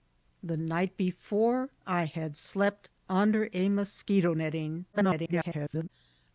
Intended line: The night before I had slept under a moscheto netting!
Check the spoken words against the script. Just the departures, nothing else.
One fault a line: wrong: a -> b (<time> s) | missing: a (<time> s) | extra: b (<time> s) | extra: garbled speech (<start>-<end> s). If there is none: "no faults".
extra: garbled speech (4.9-5.9 s)